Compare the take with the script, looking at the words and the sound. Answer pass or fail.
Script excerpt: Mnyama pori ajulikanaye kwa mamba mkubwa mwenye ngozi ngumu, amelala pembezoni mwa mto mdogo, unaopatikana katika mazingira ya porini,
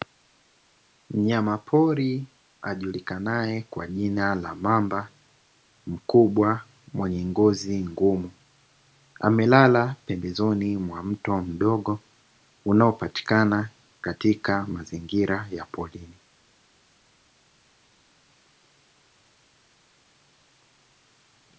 fail